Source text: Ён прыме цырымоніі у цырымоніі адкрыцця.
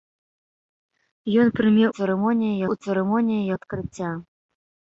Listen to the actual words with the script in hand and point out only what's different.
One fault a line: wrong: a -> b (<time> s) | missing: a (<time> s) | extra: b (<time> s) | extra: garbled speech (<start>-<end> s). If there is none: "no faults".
no faults